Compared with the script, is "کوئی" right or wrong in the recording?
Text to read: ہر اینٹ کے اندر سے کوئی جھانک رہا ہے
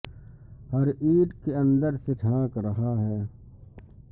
wrong